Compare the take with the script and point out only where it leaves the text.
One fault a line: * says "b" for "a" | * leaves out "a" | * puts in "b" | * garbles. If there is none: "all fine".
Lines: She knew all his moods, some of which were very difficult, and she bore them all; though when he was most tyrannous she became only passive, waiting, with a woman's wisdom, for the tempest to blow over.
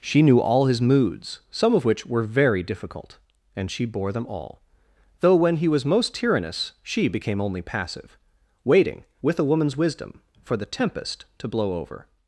all fine